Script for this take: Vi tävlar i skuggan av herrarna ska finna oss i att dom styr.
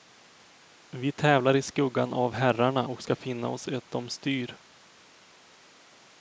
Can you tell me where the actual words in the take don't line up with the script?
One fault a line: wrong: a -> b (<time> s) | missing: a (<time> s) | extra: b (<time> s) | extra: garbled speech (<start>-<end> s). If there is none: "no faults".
extra: och (2.8 s)